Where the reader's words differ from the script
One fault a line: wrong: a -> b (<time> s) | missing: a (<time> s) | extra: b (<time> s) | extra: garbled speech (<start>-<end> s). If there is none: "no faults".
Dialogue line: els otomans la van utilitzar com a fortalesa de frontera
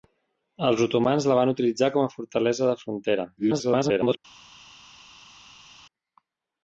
extra: garbled speech (3.4-4.2 s)